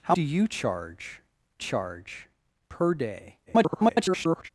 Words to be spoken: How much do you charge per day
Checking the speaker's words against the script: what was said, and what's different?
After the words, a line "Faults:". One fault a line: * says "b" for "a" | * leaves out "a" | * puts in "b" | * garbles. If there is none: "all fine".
How do you charge charge per day [garbled]
Faults:
* leaves out "much"
* puts in "charge"
* garbles